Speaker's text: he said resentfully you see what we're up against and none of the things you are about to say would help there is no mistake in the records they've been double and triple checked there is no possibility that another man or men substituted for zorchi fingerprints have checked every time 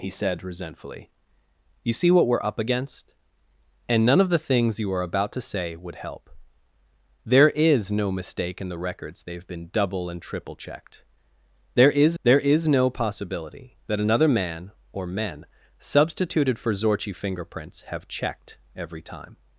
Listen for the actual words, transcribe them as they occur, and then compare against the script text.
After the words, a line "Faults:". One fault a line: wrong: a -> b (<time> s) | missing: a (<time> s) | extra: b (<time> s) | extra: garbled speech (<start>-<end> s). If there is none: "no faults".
he said resentfully you see what we're up against and none of the things you are about to say would help there is no mistake in the records they've been double and triple checked there is there is no possibility that another man or men substituted for zorchi fingerprints have checked every time
Faults:
extra: there is (12.2 s)